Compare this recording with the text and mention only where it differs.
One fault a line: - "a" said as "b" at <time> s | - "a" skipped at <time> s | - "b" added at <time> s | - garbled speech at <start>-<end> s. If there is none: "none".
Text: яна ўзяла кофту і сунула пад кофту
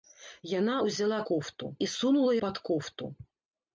none